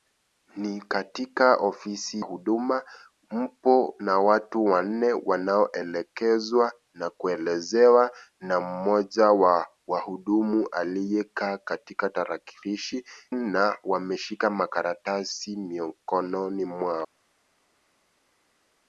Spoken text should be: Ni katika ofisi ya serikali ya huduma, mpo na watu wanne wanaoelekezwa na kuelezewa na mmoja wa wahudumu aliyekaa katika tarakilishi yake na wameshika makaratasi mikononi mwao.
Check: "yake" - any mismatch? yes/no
yes